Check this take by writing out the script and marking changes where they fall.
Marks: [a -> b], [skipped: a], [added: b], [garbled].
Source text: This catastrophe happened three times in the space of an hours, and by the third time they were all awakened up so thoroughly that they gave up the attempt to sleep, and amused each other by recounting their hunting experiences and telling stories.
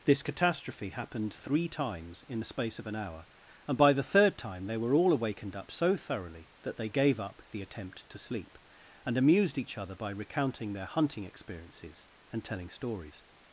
This catastrophe happened three times in the space of an [hours, -> hour] and by the third time they were all awakened up so thoroughly that they gave up the attempt to sleep, and amused each other by recounting their hunting experiences and telling stories.